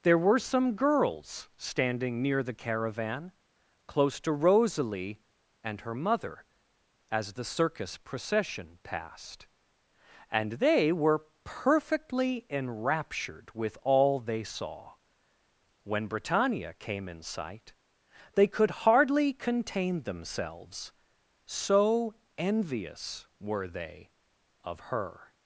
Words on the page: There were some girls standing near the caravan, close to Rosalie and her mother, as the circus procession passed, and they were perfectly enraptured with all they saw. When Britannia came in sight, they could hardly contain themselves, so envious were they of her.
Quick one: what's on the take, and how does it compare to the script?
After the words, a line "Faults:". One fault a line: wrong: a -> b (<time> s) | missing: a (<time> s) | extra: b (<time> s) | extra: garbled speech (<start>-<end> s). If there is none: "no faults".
There were some girls standing near the caravan, close to Rosalie and her mother, as the circus procession passed, and they were perfectly enraptured with all they saw. When Britannia came in sight, they could hardly contain themselves, so envious were they of her.
Faults:
no faults